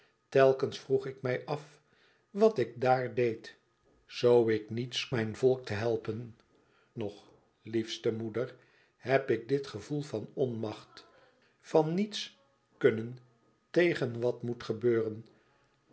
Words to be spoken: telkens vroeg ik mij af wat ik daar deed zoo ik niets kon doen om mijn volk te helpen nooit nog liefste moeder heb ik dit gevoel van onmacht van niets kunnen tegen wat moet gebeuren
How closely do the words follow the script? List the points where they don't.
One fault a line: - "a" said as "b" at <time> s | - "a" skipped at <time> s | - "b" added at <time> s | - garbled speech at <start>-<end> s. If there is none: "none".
- "kon doen om" skipped at 5.1 s
- "nooit" skipped at 6.4 s